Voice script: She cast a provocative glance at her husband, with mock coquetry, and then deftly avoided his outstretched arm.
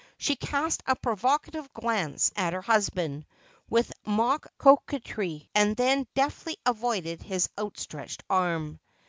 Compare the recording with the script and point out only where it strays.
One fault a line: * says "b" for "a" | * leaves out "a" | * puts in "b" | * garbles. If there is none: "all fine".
all fine